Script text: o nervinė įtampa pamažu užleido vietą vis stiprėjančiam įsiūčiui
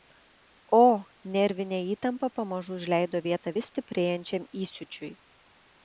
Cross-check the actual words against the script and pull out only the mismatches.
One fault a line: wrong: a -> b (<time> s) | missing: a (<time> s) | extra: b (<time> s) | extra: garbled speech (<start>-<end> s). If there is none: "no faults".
no faults